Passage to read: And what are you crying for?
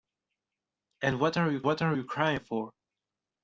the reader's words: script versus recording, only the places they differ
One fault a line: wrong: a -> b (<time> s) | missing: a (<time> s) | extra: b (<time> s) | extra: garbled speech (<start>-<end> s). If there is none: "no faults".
extra: what are you (1.6 s)